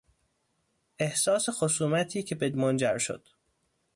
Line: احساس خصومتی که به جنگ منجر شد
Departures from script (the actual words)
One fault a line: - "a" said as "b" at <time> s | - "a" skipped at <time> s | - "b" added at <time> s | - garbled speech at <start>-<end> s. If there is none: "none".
- "جنگ" skipped at 2.5 s